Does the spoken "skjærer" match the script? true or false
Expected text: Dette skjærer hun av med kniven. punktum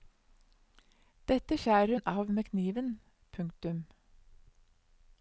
true